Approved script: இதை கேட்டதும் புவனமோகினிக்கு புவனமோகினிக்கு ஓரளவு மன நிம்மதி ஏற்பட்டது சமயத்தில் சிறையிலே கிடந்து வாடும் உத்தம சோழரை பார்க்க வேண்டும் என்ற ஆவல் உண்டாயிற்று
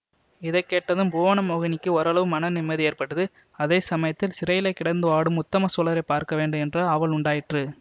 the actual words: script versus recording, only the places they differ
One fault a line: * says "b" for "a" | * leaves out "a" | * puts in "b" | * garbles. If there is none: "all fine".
* leaves out "புவனமோகினிக்கு"
* puts in "அதே"